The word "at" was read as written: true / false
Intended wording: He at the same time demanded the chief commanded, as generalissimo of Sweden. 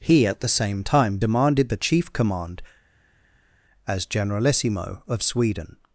true